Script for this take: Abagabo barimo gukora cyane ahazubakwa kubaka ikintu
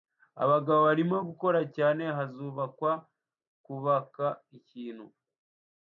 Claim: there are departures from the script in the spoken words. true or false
false